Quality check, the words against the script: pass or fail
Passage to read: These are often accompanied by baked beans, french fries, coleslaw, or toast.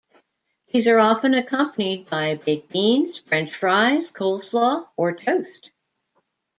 pass